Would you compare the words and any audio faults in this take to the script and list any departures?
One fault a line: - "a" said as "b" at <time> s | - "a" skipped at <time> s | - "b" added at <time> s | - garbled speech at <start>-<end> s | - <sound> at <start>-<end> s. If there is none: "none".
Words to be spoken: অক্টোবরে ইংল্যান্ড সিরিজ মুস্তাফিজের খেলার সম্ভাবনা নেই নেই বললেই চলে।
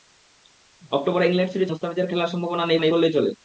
none